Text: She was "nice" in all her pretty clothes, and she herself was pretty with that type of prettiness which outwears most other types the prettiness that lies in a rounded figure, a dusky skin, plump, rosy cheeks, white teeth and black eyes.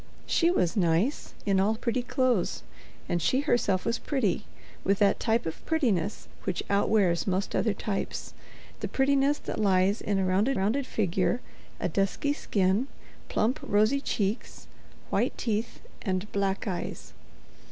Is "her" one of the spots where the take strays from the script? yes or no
yes